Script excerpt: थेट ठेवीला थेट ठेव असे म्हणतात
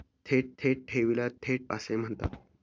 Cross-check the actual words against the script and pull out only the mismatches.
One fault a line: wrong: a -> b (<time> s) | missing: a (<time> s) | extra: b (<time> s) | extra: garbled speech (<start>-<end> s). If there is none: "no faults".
extra: थेट (0.6 s)
missing: ठेव (1.7 s)